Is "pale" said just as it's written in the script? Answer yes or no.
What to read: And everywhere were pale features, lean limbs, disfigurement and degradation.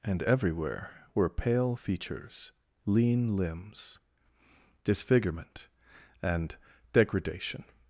yes